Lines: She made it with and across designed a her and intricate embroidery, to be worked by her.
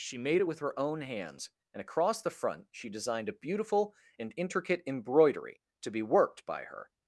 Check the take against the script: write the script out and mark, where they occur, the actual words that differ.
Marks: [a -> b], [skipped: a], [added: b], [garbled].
She made it with [added: her own hands] and across [added: the front she] designed a [her -> beautiful] and intricate embroidery, to be worked by her.